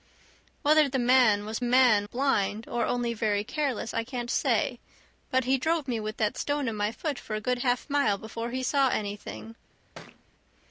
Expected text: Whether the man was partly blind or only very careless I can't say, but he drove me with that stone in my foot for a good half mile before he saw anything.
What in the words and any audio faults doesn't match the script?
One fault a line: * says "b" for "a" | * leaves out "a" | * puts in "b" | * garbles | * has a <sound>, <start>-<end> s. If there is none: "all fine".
* says "man" for "partly"
* has a thud, 10.0-10.3 s